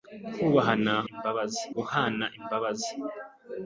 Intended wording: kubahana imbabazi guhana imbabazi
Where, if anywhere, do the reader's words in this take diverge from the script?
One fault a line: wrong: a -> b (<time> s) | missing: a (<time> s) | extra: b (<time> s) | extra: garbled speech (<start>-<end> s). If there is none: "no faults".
no faults